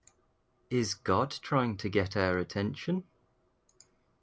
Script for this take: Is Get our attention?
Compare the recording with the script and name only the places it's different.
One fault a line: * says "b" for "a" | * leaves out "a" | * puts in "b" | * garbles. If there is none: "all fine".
* puts in "God trying to"